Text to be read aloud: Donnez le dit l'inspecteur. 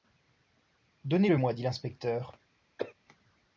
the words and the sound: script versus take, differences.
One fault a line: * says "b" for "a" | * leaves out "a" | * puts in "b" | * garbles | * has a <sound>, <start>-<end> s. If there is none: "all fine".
* puts in "moi"
* has a cough, 2.8-2.9 s